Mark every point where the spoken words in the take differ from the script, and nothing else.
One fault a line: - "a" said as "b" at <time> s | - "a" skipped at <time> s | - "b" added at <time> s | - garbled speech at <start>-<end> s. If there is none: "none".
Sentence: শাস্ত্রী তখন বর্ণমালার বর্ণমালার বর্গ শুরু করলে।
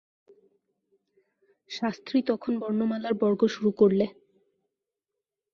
- "বর্ণমালার" skipped at 3.1 s